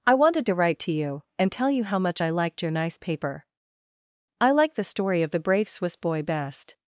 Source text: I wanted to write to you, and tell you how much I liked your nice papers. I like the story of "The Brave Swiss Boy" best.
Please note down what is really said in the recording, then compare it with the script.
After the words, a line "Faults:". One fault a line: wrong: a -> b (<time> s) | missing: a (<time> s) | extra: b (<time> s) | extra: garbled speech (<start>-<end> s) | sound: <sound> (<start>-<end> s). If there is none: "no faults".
I wanted to write to you, and tell you how much I liked your nice paper. I like the story of "The Brave Swiss Boy" best.
Faults:
wrong: papers -> paper (3.0 s)